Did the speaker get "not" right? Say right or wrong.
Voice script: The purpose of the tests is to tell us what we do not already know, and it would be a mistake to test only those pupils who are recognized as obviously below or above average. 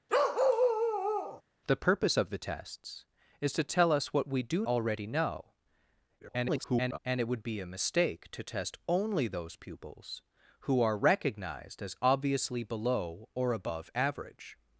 wrong